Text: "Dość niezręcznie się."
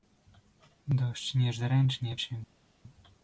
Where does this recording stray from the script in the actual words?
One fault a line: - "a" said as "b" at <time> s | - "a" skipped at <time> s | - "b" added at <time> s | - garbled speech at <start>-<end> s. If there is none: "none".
none